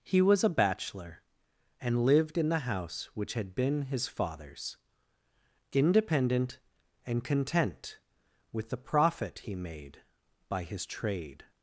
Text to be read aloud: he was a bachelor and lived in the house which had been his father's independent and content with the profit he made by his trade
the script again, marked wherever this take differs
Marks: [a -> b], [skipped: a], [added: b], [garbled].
he was a bachelor and lived in the house which had been his father's independent and content with the profit he made by his trade